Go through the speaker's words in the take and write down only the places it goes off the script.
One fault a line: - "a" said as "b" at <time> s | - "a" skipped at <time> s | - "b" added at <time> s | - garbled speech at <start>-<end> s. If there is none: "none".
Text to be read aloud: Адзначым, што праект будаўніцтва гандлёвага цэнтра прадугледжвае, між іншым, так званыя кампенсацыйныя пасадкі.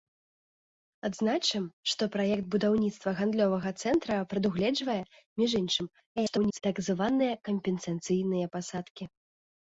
- garbled speech at 6.2-6.6 s